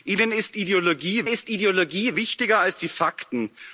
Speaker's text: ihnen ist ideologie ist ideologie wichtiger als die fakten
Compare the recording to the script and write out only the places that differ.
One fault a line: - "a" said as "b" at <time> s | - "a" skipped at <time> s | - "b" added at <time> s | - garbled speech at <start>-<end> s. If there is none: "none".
none